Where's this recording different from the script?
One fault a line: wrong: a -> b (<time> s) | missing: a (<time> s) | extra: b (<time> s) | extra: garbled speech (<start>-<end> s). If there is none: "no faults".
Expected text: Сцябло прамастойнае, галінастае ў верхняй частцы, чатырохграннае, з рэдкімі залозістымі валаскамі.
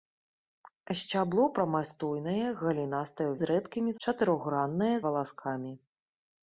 missing: верхняй частцы чатырохграннае (3.4 s)
wrong: залозістымі -> чатырохграннае (4.0 s)